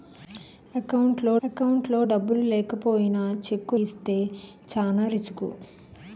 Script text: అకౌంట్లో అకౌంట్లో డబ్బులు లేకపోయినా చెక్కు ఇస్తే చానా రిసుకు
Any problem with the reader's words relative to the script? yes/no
no